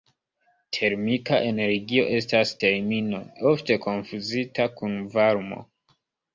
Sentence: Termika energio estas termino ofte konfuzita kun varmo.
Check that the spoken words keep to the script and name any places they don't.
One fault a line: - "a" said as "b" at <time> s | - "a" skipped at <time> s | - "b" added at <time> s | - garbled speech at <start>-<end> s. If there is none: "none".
none